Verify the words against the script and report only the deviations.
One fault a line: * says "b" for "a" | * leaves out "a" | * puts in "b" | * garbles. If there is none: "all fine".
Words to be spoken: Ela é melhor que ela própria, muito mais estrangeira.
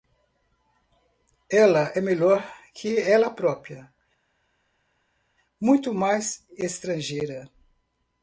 all fine